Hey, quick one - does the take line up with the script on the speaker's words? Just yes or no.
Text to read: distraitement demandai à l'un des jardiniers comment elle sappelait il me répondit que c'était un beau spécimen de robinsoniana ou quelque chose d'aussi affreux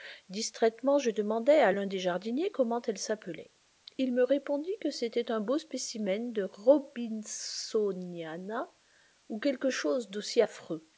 no